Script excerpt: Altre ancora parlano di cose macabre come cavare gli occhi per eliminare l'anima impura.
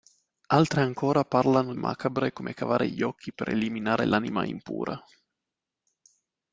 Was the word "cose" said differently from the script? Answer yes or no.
yes